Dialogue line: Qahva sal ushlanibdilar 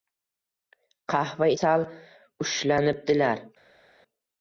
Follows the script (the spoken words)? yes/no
yes